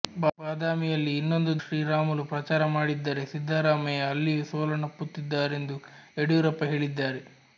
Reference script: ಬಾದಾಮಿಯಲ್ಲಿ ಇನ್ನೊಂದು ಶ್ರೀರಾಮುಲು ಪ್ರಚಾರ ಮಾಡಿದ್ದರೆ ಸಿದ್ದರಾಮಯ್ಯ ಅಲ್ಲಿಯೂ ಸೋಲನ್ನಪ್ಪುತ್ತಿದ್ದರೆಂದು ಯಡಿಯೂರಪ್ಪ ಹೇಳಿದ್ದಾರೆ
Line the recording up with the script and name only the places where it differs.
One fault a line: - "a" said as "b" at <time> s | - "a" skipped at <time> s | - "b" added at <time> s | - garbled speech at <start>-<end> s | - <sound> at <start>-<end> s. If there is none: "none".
none